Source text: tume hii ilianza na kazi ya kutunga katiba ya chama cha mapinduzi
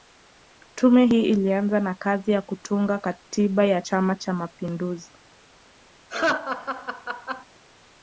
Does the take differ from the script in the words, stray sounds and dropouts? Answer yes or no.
yes